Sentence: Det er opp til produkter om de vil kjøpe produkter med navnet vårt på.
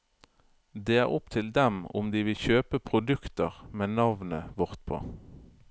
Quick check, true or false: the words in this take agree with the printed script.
false